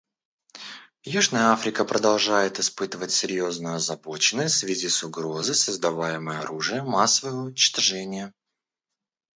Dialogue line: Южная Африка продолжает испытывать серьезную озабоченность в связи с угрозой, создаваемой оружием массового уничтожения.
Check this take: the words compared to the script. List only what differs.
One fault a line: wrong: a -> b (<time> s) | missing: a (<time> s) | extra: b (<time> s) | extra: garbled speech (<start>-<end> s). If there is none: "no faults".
no faults